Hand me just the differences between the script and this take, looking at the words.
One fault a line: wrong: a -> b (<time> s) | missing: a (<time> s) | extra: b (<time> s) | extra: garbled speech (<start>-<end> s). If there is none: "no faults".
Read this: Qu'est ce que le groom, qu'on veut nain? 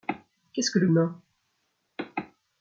missing: groom qu'on veut (0.9 s)